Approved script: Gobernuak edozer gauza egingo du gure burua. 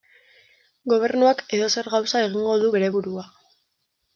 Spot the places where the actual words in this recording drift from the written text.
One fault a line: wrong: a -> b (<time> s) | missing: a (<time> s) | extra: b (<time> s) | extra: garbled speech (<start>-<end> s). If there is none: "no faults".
wrong: gure -> bere (2.8 s)